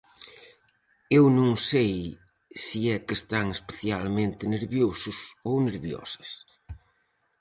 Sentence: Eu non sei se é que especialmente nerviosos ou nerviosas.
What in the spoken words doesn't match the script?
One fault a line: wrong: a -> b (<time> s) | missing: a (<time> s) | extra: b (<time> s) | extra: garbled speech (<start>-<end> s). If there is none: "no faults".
extra: están (3.2 s)